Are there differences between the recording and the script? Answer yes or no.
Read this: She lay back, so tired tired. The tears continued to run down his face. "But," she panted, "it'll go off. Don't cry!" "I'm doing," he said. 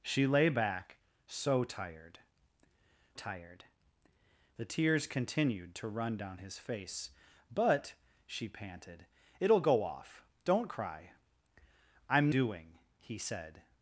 no